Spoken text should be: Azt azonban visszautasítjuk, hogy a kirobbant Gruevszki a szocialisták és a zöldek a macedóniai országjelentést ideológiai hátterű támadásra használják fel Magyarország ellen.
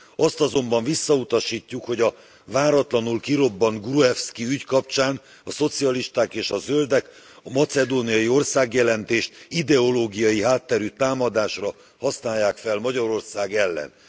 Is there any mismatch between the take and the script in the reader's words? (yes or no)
yes